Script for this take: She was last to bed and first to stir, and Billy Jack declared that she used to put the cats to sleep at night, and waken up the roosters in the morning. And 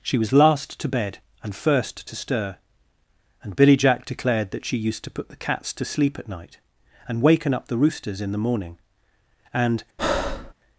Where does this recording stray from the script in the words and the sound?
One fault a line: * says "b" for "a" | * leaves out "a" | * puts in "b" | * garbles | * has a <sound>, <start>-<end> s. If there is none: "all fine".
* has a breath, 10.0-10.5 s